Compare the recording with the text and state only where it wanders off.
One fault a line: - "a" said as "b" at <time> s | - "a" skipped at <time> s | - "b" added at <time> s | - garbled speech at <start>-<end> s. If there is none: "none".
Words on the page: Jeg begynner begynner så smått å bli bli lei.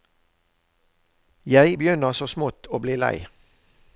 - "begynner" skipped at 2.1 s
- "bli" skipped at 2.9 s